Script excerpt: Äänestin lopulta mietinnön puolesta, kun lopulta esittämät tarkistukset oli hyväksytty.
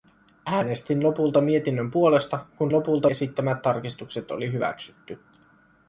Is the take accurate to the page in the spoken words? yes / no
yes